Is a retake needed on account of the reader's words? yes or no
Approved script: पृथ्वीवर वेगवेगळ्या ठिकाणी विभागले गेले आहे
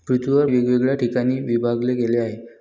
no